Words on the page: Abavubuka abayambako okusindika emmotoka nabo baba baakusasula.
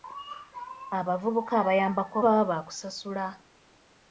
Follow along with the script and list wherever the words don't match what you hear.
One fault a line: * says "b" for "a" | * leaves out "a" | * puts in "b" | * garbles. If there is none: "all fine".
* leaves out "okusindika emmotoka nabo"